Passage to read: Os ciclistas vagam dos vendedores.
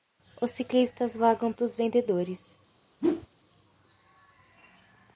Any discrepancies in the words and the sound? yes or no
yes